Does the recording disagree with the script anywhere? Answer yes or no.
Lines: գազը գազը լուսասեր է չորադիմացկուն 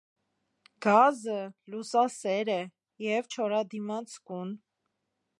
yes